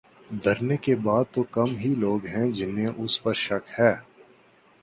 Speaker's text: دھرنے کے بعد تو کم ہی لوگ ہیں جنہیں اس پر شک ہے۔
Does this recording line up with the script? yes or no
yes